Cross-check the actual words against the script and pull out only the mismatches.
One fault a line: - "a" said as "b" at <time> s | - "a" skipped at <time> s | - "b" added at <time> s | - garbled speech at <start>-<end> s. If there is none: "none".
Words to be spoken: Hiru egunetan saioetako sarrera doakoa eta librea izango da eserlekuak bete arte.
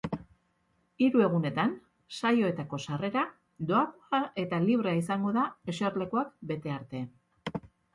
none